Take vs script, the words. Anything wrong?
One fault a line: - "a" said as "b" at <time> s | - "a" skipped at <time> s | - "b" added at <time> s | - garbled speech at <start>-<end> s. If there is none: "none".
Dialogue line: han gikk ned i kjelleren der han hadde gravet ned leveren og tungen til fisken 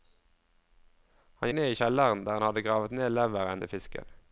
- "gikk" skipped at 1.5 s
- "og tungen" skipped at 3.6 s